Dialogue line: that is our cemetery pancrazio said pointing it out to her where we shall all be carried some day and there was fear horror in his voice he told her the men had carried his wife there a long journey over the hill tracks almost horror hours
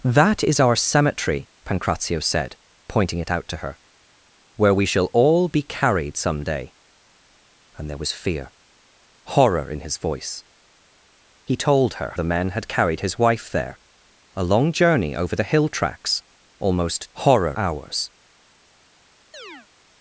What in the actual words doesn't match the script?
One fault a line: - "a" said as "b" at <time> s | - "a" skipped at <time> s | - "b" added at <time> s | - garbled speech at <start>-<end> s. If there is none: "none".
none